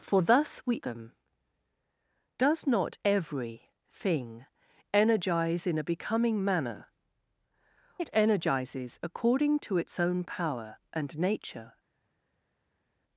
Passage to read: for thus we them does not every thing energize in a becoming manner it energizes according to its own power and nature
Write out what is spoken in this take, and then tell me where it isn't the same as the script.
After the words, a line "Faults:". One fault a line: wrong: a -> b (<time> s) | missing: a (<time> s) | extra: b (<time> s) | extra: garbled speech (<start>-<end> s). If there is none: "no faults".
for thus we them does not every thing energize in a becoming manner it energizes according to its own power and nature
Faults:
no faults